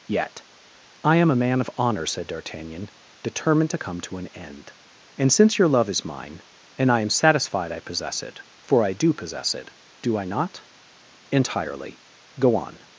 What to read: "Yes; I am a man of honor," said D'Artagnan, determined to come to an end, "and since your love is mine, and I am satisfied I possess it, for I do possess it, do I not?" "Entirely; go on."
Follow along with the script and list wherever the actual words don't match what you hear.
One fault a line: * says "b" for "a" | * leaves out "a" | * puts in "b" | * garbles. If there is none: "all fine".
* says "Yet" for "Yes"